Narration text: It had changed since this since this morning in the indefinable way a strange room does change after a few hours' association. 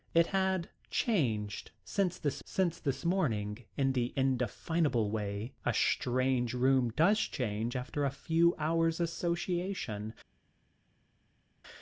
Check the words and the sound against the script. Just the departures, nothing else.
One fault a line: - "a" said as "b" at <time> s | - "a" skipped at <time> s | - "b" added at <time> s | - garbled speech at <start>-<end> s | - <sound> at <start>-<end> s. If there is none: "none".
none